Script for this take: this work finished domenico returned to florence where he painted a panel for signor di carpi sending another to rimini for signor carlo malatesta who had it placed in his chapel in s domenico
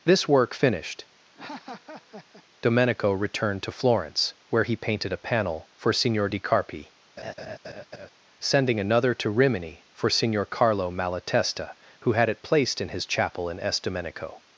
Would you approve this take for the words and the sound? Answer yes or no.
no